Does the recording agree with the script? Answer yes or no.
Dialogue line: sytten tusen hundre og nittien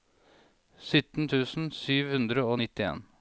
no